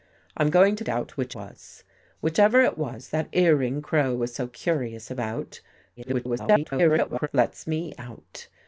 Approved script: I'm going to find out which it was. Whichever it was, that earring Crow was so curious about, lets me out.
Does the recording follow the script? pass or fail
fail